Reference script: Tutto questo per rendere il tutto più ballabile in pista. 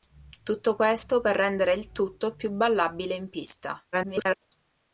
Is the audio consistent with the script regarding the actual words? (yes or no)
no